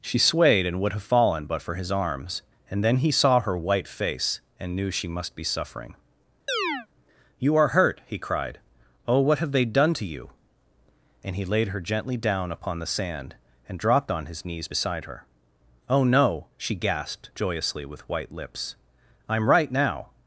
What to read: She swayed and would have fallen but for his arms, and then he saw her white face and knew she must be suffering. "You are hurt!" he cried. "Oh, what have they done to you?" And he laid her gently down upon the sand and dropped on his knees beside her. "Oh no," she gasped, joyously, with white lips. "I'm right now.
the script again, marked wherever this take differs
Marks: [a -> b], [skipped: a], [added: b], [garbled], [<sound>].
She swayed and would have fallen but for his arms, and then he saw her white face and knew she must be suffering. [chirp] "You are hurt!" he cried. "Oh, what have they done to you?" And he laid her gently down upon the sand and dropped on his knees beside her. "Oh no," she gasped, joyously, with white lips. "I'm right now.